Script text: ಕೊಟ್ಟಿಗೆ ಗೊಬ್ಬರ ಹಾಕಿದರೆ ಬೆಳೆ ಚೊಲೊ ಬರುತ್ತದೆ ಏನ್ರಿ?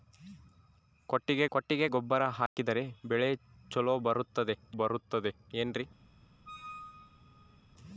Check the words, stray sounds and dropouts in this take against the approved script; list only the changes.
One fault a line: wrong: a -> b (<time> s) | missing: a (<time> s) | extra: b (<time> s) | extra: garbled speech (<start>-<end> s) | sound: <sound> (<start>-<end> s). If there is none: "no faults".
extra: ಕೊಟ್ಟಿಗೆ (1.5 s)
sound: dropout (2.5-2.6 s)
extra: ಬರುತ್ತದೆ (4.7 s)
sound: squeak (6.5-7.6 s)